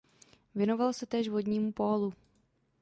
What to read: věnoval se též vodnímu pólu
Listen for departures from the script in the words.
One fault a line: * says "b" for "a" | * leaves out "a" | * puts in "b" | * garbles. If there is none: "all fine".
all fine